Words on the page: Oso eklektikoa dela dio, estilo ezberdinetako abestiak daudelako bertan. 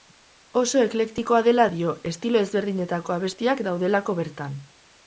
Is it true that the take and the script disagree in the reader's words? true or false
false